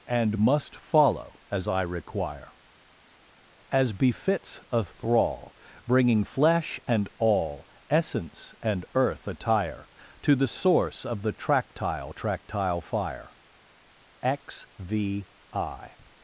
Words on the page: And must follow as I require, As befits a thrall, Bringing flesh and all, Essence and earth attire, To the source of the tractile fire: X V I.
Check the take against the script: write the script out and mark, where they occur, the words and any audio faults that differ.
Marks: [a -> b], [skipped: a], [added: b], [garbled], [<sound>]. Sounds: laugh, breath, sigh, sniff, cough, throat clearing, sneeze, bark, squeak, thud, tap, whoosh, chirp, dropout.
And must follow as I require, As befits a thrall, Bringing flesh and all, Essence and earth attire, To the source of the tractile [added: tractile] fire: X V I.